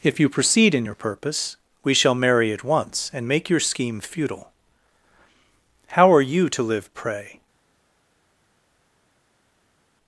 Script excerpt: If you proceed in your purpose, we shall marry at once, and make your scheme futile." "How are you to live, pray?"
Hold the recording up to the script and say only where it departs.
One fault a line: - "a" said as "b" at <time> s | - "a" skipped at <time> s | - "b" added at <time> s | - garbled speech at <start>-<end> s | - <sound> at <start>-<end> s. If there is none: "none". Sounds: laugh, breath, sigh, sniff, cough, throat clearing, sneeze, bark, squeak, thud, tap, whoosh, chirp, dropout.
none